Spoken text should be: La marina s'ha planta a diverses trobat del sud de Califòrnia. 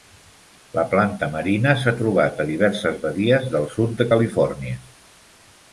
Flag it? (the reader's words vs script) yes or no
yes